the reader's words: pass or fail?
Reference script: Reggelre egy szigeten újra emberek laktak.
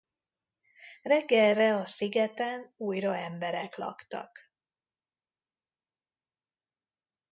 fail